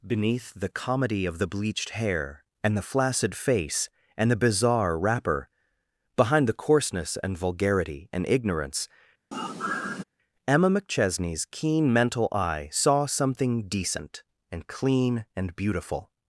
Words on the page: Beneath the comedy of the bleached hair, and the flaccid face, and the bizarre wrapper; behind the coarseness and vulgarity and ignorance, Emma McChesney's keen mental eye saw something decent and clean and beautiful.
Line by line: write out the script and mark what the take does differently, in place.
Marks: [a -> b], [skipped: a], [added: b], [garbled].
Beneath the comedy of the bleached hair, and the flaccid face, and the bizarre wrapper; behind the coarseness and vulgarity and ignorance, Emma McChesney's keen mental eye saw something decent and clean and beautiful.